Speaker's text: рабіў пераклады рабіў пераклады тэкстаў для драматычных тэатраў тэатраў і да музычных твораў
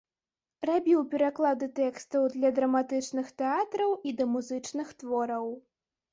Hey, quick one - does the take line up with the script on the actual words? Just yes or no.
no